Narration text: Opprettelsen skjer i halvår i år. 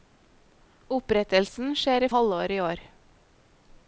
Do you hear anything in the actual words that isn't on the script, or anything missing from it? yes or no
no